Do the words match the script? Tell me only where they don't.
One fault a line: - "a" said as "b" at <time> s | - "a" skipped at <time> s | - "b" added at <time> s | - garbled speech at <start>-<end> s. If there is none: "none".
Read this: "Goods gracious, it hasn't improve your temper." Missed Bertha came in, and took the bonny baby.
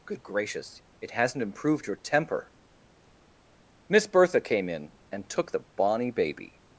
- "Goods" said as "Good" at 0.1 s
- "improve" said as "improved" at 1.4 s
- "Missed" said as "Miss" at 3.9 s